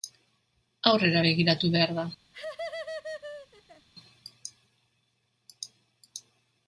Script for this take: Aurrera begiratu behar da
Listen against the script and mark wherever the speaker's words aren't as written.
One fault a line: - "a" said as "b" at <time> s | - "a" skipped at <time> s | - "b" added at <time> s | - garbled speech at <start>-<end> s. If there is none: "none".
none